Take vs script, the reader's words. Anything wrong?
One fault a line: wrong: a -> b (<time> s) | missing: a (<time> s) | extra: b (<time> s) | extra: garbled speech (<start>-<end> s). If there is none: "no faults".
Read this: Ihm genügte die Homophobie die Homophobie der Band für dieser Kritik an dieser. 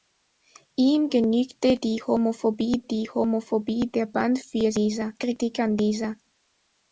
no faults